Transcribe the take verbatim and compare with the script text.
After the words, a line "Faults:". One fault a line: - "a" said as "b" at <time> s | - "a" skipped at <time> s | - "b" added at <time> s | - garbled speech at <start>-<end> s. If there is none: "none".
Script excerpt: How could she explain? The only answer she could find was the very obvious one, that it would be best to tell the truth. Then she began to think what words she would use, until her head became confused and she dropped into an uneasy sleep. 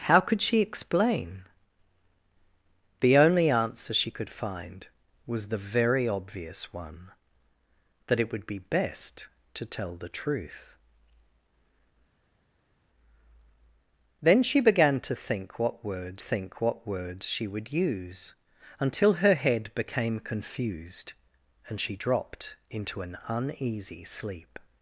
How could she explain? The only answer she could find was the very obvious one, that it would be best to tell the truth. Then she began to think what words think what words she would use, until her head became confused and she dropped into an uneasy sleep.
Faults:
- "think what words" added at 16.2 s